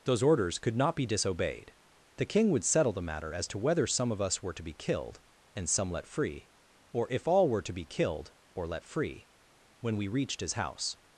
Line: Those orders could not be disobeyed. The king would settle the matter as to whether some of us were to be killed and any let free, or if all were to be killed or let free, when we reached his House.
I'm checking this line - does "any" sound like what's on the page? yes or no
no